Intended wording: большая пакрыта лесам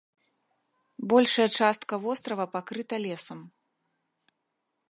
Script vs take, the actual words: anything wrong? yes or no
yes